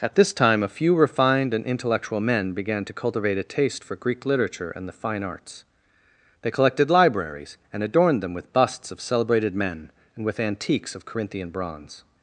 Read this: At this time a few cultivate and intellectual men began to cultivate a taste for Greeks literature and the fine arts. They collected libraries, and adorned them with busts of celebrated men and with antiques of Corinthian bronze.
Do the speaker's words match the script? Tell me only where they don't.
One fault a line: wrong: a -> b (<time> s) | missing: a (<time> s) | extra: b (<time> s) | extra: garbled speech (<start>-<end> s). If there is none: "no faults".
wrong: cultivate -> refined (0.9 s)
wrong: Greeks -> Greek (4.0 s)